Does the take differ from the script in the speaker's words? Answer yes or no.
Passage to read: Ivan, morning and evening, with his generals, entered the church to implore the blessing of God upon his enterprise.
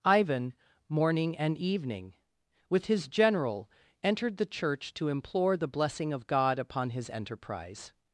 yes